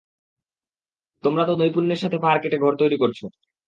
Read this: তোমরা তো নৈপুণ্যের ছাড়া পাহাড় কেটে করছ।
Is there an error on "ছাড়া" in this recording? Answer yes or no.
yes